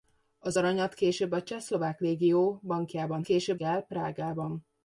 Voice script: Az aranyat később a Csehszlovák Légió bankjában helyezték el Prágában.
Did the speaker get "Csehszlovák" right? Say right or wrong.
right